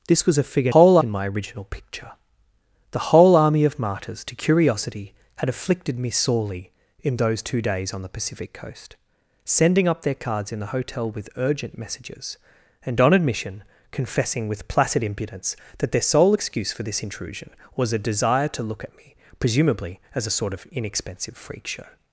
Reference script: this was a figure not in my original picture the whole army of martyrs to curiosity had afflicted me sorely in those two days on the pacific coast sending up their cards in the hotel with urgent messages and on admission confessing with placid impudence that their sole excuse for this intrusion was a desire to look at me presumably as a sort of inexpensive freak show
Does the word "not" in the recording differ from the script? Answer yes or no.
yes